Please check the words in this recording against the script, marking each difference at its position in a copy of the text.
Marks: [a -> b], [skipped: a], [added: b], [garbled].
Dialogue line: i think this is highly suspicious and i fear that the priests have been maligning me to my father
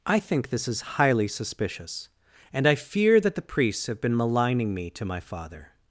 i think this is highly suspicious and i fear that the priests have been maligning me to my father